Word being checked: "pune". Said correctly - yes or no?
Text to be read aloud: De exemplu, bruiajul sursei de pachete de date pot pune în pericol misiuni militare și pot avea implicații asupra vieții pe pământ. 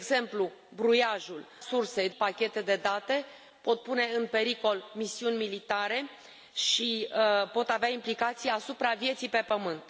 yes